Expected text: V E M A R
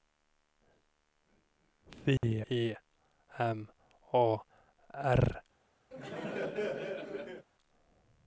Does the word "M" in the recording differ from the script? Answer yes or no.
no